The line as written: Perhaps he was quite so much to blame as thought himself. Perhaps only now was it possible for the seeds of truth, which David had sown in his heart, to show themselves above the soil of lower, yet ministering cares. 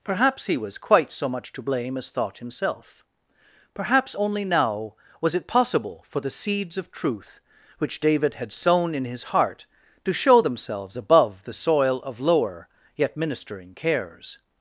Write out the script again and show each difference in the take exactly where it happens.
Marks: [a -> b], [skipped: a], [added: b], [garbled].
Perhaps he was quite so much to blame as thought himself. Perhaps only now was it possible for the seeds of truth, which David had sown in his heart, to show themselves above the soil of lower, yet ministering cares.